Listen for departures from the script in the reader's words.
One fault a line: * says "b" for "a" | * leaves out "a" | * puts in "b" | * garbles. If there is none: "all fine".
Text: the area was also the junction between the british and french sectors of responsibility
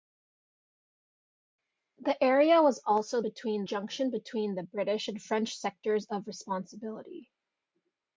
* says "between" for "the"